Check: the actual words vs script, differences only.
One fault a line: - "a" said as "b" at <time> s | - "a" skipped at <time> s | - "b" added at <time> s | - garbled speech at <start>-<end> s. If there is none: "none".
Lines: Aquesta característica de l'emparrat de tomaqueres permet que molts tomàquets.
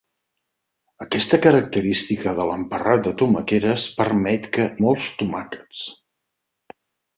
none